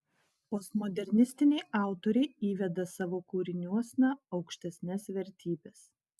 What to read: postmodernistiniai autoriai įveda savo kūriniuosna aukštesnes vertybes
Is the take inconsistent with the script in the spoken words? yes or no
no